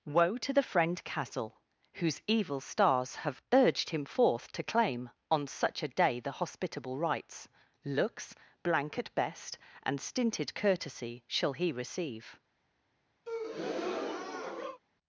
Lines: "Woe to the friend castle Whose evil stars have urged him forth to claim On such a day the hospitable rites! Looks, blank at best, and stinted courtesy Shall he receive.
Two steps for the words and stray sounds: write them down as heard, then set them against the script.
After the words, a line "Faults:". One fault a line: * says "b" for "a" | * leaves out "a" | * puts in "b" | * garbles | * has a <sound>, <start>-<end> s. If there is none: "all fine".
"Woe to the friend castle Whose evil stars have urged him forth to claim On such a day the hospitable rites! Looks, blank at best, and stinted courtesy Shall he receive.
Faults:
* has a breath, 13.3-14.8 s